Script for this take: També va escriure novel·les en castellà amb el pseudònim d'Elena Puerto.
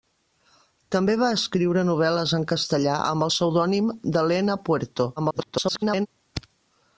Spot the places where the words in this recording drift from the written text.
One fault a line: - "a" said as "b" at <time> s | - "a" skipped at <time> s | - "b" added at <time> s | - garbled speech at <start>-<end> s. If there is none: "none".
- garbled speech at 5.2-6.1 s